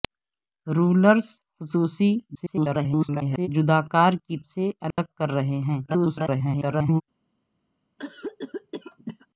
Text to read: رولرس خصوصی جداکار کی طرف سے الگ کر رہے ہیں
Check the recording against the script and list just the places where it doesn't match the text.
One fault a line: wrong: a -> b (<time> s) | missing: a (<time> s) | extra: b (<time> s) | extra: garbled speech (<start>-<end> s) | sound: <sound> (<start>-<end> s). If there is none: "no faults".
extra: garbled speech (2.3-3.5 s)
missing: طرف (4.4 s)
sound: dropout (4.9-5.0 s)
extra: garbled speech (5.9-7.0 s)
sound: cough (8.0-9.3 s)